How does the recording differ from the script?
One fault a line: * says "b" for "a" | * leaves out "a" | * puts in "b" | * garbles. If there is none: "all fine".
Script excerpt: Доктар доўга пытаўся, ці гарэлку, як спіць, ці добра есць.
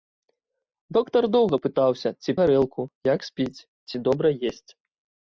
all fine